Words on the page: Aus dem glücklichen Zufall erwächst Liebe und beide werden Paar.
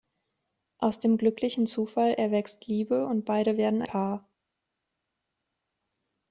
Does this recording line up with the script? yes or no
yes